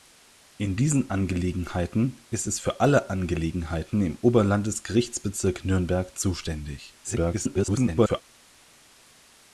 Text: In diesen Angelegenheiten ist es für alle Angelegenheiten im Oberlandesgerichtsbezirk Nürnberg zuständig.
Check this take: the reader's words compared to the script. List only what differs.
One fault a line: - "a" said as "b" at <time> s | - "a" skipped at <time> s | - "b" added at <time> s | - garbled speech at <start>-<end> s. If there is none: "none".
- garbled speech at 7.0-8.2 s